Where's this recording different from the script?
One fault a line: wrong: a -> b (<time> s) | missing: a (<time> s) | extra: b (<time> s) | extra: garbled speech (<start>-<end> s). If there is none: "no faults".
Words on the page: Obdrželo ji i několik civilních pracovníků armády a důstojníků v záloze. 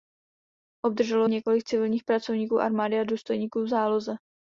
missing: ji i (1.3 s)